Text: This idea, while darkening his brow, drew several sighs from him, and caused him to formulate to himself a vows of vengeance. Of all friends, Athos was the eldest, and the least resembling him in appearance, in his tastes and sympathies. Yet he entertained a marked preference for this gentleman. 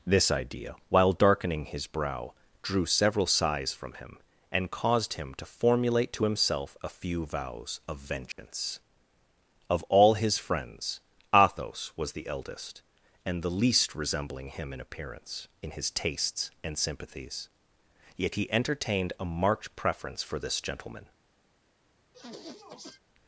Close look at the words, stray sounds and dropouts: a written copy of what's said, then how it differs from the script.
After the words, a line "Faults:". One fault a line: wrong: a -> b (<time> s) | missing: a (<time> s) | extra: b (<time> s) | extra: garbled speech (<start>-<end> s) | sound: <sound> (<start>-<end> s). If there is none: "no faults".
This idea, while darkening his brow, drew several sighs from him, and caused him to formulate to himself a few vows of vengeance. Of all his friends, Athos was the eldest, and the least resembling him in appearance, in his tastes and sympathies. Yet he entertained a marked preference for this gentleman.
Faults:
extra: few (6.9 s)
sound: dropout (8.3-8.4 s)
extra: his (10.1 s)
sound: sniff (22.1-23.0 s)